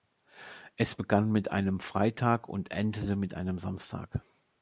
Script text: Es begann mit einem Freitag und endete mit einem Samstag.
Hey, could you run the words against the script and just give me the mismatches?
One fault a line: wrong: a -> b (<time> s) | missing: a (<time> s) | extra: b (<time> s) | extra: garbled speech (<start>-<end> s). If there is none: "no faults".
no faults